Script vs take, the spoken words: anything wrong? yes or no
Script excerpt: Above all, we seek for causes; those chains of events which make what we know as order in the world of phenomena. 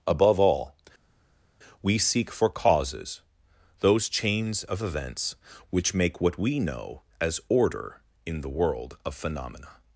no